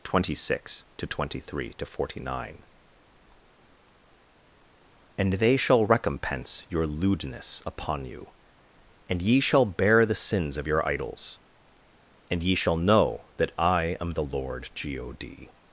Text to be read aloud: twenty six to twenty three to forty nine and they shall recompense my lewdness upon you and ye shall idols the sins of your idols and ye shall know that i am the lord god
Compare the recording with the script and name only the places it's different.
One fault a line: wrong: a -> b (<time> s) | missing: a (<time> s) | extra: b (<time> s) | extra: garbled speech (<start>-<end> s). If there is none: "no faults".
wrong: my -> your (6.7 s)
wrong: idols -> bear (9.6 s)